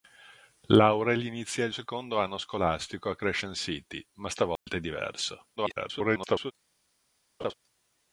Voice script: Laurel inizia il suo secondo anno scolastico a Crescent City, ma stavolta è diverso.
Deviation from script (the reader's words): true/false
true